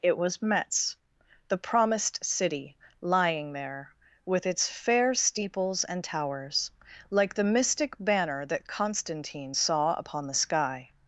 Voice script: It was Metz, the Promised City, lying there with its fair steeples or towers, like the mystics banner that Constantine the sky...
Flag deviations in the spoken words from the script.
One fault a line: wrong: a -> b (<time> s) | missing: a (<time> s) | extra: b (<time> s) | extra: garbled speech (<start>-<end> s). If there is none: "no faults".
wrong: or -> and (5.8 s)
wrong: mystics -> mystic (7.5 s)
extra: saw upon (9.5 s)